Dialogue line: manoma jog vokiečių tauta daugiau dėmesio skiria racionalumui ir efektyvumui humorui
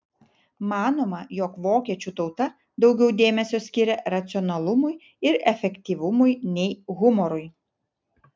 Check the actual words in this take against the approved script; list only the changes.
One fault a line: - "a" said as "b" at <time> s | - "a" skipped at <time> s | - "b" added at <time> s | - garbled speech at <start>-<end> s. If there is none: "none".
- "nei" added at 6.6 s